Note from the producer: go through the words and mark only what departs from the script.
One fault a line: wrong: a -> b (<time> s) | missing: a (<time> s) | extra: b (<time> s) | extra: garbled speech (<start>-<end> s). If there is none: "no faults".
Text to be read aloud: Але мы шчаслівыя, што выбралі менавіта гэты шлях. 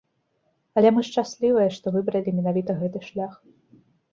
no faults